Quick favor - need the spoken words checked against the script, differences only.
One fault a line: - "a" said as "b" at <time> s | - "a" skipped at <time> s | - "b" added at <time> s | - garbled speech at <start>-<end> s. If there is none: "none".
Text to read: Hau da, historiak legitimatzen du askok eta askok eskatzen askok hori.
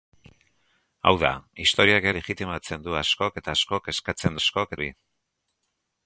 none